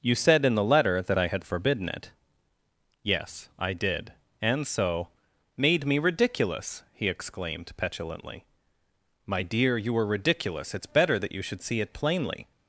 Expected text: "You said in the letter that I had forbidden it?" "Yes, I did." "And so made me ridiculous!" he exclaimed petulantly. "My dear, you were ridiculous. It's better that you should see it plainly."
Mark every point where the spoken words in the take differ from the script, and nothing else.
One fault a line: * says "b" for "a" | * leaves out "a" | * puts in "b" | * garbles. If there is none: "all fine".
all fine